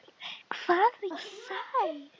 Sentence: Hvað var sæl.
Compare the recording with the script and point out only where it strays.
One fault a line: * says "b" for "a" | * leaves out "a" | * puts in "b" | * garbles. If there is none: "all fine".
all fine